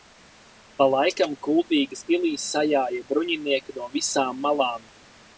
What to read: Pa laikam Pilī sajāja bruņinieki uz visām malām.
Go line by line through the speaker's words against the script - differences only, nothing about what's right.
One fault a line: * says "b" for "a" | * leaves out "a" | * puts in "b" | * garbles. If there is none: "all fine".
* puts in "Kuldīgas"
* says "no" for "uz"